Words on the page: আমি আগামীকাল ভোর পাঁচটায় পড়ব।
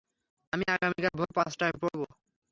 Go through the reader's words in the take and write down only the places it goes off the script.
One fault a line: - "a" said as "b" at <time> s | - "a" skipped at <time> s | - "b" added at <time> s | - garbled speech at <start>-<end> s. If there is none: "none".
none